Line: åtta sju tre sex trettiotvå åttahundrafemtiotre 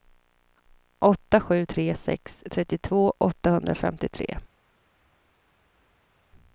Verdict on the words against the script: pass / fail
pass